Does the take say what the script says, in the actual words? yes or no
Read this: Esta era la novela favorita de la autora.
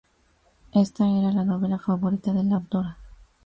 yes